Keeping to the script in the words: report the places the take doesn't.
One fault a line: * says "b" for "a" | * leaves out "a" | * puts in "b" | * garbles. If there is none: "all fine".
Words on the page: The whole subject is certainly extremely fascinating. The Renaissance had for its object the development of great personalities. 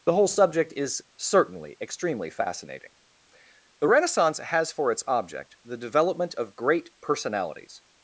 * says "has" for "had"